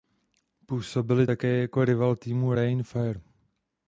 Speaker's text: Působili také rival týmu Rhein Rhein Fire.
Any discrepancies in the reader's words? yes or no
yes